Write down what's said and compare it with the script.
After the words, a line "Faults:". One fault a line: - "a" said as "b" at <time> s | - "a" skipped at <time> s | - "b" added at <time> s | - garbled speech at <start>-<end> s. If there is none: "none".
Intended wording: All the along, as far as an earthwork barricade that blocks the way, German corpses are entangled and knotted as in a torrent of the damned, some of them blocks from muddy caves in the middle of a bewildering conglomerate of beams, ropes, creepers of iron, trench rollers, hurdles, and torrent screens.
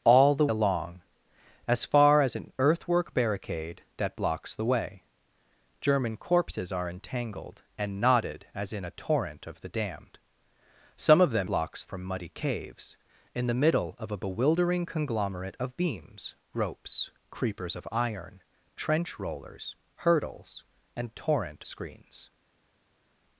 All the along, as far as an earthwork barricade that blocks the way, German corpses are entangled and knotted as in a torrent of the damned, some of them blocks from muddy caves in the middle of a bewildering conglomerate of beams, ropes, creepers of iron, trench rollers, hurdles, and torrent screens.
Faults:
none